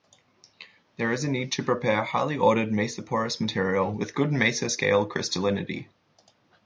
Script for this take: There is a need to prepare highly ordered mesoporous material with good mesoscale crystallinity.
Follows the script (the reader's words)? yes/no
yes